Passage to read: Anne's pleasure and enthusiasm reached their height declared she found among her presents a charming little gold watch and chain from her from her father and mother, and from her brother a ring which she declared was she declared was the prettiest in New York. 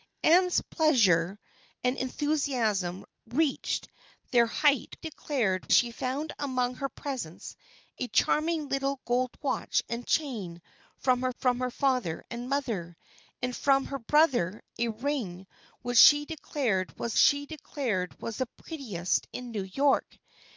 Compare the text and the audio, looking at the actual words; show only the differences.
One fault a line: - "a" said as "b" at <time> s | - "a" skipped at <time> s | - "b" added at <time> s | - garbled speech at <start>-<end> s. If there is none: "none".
none